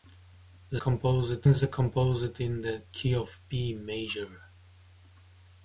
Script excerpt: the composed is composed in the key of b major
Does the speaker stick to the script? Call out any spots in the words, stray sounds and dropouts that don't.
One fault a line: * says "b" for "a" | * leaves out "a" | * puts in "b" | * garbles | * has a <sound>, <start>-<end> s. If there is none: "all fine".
all fine